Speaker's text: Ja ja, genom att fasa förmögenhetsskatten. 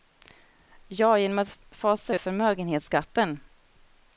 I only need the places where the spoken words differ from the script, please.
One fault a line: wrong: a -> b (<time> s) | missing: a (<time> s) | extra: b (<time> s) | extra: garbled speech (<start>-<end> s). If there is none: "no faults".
missing: ja (1.2 s)
extra: ut (2.1 s)